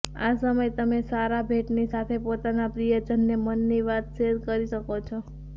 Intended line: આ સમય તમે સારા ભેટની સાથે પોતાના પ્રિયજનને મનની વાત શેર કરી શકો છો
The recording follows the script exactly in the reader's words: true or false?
true